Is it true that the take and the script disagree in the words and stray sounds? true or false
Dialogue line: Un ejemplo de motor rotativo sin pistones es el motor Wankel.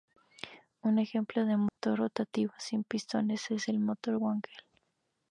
true